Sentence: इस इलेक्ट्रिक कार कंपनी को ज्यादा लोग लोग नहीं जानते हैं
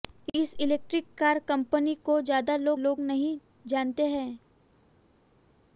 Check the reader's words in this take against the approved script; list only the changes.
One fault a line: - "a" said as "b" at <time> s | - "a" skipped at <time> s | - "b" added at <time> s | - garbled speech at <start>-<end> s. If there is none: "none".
none